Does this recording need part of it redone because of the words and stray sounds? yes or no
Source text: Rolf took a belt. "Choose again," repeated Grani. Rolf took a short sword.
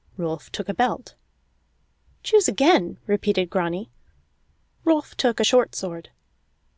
no